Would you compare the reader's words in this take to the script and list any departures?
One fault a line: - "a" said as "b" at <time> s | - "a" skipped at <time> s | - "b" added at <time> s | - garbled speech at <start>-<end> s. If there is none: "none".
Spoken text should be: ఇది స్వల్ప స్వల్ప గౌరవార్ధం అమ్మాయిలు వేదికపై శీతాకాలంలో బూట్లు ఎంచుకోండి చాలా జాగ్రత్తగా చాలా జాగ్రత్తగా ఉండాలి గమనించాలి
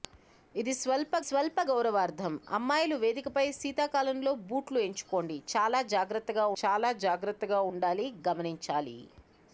none